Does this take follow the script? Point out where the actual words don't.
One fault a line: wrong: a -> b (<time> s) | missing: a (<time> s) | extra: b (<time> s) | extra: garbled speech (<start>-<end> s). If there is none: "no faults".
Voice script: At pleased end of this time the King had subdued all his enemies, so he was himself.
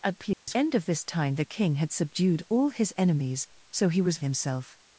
no faults